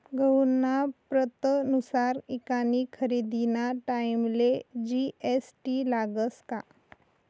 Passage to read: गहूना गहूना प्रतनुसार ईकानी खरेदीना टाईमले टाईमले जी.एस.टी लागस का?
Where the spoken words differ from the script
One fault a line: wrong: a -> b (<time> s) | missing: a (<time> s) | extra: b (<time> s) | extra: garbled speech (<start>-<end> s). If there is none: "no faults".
missing: गहूना (0.7 s)
missing: टाईमले (4.5 s)